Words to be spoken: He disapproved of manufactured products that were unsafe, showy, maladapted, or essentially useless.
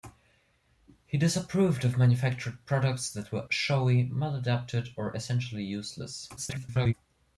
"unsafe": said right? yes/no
no